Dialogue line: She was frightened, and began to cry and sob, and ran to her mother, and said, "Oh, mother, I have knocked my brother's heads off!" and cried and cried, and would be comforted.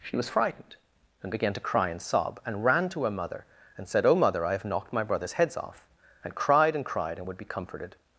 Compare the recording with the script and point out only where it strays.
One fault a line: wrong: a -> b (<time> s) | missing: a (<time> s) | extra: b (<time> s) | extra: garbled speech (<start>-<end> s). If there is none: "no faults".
no faults